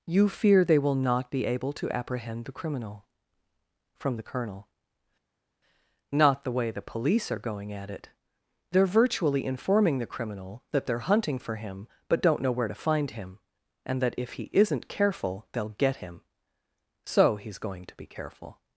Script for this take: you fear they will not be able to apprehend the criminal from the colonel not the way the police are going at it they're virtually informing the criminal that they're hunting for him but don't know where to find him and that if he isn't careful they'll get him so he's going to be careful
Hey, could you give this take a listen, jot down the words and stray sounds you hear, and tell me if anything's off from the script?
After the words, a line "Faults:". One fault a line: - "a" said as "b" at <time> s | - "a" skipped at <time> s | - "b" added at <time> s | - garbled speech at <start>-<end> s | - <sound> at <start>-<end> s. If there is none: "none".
you fear they will not be able to apprehend the criminal from the colonel not the way the police are going at it they're virtually informing the criminal that they're hunting for him but don't know where to find him and that if he isn't careful they'll get him so he's going to be careful
Faults:
none